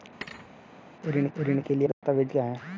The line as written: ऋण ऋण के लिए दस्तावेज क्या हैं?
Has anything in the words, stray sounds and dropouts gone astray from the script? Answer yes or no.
yes